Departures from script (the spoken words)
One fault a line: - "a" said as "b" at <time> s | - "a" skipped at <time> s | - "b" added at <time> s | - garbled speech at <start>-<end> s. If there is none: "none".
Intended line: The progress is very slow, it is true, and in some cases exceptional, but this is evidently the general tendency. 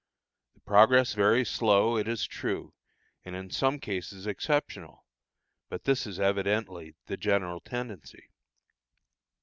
- "is" skipped at 1.1 s